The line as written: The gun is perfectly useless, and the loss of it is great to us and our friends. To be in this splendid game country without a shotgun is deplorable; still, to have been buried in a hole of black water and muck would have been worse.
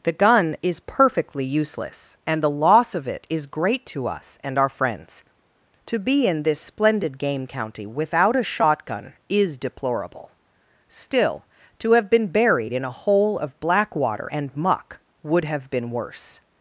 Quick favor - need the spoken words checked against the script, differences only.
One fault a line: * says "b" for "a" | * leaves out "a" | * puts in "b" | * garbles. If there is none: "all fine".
* says "county" for "country"